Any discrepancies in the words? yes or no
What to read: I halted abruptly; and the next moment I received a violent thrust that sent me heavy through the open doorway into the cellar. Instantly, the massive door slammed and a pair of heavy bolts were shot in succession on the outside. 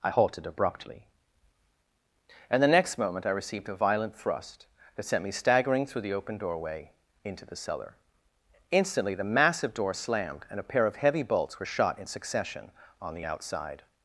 yes